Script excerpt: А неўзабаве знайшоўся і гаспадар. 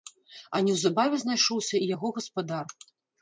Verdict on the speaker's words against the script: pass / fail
fail